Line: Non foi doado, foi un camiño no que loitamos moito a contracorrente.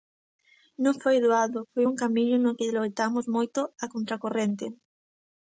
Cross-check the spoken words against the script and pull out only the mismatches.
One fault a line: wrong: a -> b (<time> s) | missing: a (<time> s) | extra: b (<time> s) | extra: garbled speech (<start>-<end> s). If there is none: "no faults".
no faults